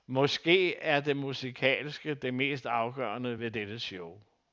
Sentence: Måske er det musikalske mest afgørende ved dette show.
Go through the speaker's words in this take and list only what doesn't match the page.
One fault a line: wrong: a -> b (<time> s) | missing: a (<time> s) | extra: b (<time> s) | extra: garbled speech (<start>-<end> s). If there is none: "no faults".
extra: det (2.1 s)